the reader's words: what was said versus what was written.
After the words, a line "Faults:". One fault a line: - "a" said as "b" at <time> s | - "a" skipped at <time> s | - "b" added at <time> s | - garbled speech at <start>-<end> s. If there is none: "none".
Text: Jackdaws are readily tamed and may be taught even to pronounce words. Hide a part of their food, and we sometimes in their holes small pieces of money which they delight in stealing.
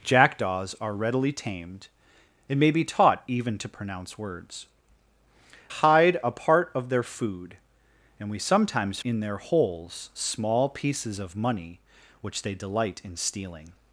Jackdaws are readily tamed and may be taught even to pronounce words. Hide a part of their food, and we sometimes in their holes small pieces of money which they delight in stealing.
Faults:
none